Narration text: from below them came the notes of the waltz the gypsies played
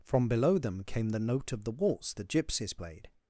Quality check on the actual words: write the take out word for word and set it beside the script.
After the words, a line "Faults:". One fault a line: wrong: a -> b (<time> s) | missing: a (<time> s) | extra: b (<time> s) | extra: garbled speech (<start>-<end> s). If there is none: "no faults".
from below them came the note of the waltz the gypsies played
Faults:
wrong: notes -> note (1.2 s)